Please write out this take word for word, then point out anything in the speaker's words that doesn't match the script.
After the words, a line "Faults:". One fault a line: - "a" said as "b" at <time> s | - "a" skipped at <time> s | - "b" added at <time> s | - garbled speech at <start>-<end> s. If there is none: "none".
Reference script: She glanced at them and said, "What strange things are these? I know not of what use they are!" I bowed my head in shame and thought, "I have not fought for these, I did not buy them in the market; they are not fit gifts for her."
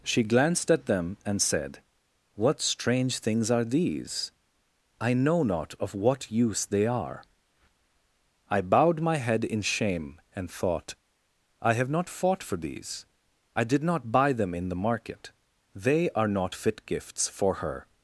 She glanced at them and said, "What strange things are these? I know not of what use they are!" I bowed my head in shame and thought, "I have not fought for these, I did not buy them in the market; they are not fit gifts for her."
Faults:
none